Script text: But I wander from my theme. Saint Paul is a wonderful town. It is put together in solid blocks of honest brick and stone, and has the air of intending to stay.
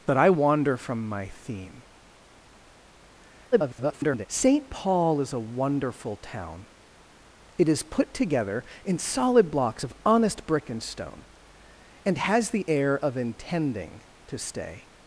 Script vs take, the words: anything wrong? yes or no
yes